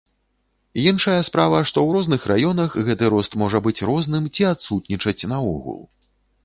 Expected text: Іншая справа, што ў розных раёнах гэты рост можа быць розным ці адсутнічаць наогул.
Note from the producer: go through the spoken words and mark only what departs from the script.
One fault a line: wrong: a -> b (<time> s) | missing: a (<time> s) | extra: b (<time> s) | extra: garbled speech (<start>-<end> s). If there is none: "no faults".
no faults